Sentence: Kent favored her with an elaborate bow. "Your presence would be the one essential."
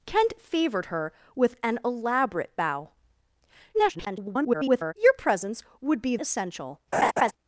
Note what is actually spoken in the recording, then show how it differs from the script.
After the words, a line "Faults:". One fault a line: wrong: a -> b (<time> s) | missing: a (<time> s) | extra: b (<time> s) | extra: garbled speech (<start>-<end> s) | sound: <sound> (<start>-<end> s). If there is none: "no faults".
Kent favored her with an elaborate bow. [garbled] "Your presence would be essential."
Faults:
extra: garbled speech (3.7-4.9 s)
missing: the one (6.2 s)
sound: laugh (6.9-7.3 s)